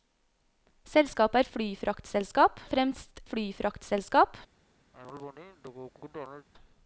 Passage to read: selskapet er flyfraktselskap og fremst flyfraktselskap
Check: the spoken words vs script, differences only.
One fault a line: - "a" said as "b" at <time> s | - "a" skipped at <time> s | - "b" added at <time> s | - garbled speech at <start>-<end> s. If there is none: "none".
none